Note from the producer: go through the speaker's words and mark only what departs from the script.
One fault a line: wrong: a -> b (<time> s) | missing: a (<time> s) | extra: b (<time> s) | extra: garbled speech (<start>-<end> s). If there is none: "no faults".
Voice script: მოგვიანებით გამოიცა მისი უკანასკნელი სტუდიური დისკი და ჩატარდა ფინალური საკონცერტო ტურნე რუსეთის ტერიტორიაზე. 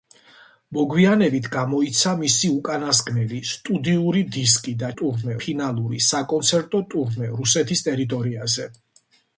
wrong: ჩატარდა -> ტურნე (5.0 s)